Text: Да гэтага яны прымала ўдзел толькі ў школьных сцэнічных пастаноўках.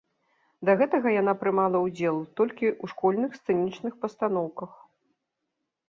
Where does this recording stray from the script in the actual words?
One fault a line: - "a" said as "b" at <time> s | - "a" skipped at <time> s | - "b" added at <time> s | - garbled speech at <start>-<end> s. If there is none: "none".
- "яны" said as "яна" at 1.2 s